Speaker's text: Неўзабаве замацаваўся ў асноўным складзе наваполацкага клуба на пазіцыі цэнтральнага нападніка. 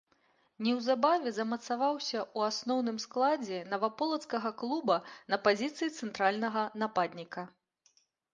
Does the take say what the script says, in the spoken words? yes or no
yes